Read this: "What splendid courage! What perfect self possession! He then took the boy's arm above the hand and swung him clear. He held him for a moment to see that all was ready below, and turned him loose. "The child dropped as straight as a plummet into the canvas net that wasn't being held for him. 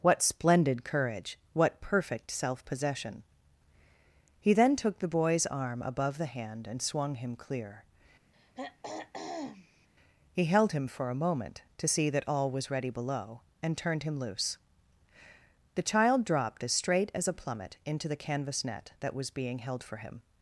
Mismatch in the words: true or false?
true